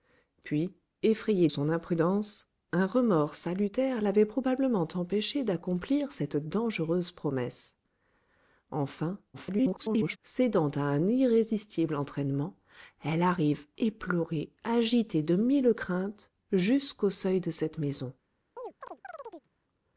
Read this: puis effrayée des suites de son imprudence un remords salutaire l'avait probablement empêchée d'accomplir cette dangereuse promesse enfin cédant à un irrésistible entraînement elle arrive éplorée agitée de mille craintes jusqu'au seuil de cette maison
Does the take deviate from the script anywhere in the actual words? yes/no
yes